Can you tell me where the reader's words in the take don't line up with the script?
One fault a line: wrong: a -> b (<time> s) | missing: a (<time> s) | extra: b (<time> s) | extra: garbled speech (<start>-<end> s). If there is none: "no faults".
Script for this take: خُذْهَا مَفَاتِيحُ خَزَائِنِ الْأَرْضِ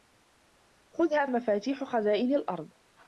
no faults